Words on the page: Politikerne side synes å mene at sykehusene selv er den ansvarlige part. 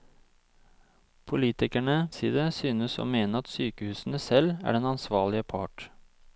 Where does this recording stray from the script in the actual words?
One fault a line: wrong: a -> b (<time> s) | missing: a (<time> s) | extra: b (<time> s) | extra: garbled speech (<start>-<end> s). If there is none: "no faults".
no faults